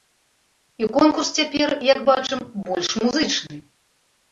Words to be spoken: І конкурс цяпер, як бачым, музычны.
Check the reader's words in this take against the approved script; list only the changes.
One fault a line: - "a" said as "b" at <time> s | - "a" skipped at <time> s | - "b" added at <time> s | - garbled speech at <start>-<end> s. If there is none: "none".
- "больш" added at 2.7 s